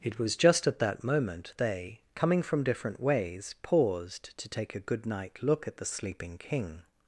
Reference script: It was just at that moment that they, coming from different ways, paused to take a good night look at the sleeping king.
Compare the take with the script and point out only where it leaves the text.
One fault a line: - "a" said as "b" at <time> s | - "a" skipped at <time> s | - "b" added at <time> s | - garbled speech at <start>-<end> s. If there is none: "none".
- "that" skipped at 1.5 s